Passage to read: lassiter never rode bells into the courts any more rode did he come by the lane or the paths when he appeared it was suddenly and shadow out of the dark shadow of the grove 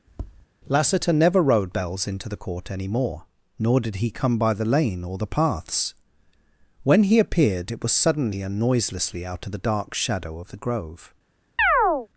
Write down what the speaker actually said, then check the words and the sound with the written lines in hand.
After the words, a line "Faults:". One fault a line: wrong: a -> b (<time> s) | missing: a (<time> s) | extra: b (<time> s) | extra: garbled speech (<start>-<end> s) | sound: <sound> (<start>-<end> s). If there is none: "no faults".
lassiter never rode bells into the court any more nor did he come by the lane or the paths when he appeared it was suddenly and noiselessly out of the dark shadow of the grove
Faults:
sound: tap (0.1-0.5 s)
wrong: courts -> court (2.3 s)
wrong: rode -> nor (3.6 s)
wrong: shadow -> noiselessly (8.6 s)
sound: chirp (11.6-12.1 s)